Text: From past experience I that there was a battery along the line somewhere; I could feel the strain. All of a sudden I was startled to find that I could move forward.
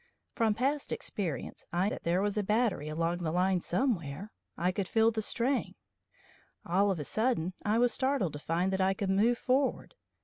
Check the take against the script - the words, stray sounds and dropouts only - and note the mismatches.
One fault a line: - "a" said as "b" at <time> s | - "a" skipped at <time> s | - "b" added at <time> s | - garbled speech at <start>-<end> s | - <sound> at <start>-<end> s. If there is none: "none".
none